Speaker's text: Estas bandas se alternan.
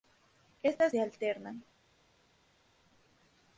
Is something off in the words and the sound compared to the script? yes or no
yes